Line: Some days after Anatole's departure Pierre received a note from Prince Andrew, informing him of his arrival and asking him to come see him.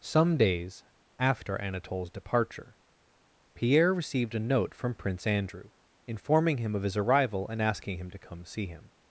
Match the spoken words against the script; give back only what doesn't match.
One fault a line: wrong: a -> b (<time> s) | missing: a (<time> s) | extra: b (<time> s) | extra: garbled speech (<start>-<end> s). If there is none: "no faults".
no faults